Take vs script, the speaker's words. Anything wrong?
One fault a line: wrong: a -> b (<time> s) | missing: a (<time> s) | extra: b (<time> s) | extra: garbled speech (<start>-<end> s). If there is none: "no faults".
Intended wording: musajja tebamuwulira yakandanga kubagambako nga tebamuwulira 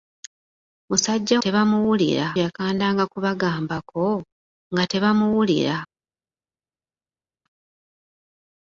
no faults